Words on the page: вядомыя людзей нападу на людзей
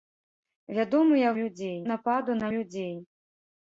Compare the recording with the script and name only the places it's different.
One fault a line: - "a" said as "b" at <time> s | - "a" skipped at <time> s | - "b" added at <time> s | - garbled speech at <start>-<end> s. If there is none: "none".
none